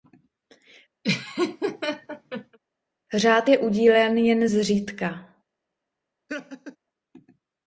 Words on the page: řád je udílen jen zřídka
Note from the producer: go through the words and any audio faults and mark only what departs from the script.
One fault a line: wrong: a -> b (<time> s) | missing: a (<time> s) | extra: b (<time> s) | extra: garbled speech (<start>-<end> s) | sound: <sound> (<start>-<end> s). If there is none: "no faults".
sound: laugh (1.0-2.6 s)
sound: laugh (6.3-6.8 s)